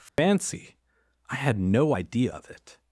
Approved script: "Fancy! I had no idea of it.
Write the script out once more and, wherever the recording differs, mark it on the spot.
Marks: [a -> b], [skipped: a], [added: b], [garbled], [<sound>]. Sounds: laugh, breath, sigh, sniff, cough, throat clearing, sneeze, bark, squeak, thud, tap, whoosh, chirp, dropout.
"Fancy! [dropout] I had no idea of it.